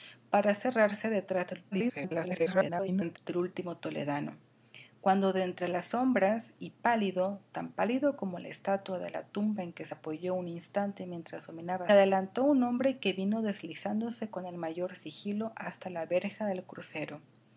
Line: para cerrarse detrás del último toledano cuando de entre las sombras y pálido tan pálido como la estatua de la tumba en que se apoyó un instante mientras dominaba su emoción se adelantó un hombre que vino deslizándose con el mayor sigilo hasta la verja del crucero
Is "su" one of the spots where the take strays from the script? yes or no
yes